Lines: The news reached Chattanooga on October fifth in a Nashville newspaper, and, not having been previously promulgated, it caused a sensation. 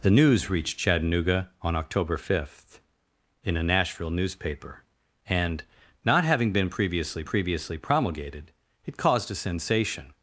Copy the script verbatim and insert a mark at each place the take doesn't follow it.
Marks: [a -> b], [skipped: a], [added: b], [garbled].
The news reached Chattanooga on October fifth in a Nashville newspaper, and, not having been previously [added: previously] promulgated, it caused a sensation.